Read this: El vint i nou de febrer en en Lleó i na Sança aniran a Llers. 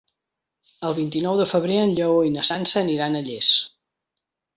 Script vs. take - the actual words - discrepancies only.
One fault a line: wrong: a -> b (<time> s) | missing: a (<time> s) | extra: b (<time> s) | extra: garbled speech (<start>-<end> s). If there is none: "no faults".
missing: en (1.9 s)